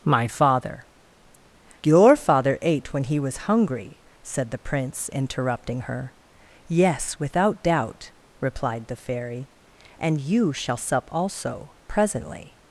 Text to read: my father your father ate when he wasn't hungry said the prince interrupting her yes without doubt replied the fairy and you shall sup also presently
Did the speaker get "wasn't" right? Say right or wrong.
wrong